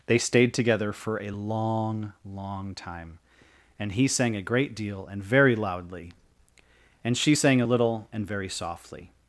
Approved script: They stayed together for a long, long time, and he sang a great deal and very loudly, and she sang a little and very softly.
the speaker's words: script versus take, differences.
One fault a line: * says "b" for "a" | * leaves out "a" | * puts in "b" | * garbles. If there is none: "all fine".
all fine